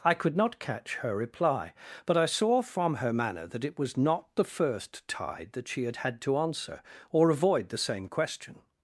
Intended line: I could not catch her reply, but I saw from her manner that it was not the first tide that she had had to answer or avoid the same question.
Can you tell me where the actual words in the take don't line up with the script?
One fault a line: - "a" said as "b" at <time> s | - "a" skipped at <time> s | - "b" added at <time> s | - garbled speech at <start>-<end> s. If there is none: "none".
none